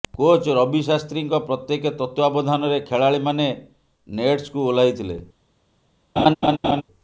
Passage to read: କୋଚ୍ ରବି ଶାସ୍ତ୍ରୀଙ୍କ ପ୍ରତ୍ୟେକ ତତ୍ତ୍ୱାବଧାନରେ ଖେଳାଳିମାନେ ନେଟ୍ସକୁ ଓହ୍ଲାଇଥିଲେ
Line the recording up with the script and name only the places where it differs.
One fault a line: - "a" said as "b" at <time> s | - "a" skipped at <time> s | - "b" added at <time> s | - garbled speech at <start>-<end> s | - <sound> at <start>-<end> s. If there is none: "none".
- laugh at 6.2-6.8 s